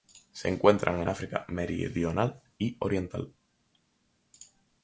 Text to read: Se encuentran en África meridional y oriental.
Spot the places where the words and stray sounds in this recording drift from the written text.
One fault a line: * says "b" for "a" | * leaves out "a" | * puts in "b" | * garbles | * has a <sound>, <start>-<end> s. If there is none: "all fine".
all fine